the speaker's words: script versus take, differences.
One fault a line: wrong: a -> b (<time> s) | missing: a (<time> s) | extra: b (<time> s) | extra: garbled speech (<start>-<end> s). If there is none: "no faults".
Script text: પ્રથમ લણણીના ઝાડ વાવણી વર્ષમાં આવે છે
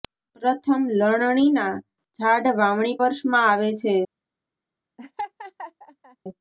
no faults